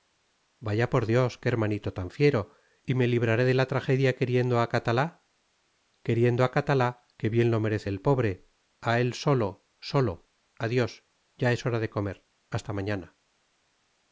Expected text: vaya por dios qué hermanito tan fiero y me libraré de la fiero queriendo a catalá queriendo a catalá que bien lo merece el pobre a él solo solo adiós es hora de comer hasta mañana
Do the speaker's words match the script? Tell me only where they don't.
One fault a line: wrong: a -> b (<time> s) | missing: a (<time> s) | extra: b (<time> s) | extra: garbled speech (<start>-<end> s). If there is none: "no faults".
wrong: fiero -> tragedia (3.7 s)
extra: ya (11.4 s)